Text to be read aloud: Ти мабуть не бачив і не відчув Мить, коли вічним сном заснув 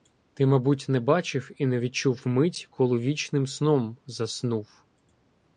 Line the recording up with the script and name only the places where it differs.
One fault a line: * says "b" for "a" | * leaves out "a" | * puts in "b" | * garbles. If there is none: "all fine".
all fine